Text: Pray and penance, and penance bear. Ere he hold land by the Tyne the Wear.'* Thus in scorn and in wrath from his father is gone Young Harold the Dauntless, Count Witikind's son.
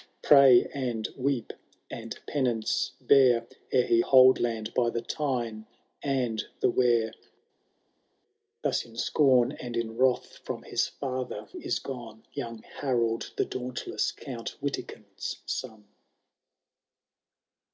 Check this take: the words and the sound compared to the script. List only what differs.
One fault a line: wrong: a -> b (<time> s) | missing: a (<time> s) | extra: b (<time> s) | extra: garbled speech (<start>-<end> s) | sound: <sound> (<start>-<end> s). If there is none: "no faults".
wrong: penance -> weep (1.1 s)
extra: and (6.0 s)